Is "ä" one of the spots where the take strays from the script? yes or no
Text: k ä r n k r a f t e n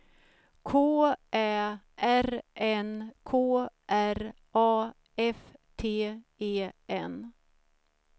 no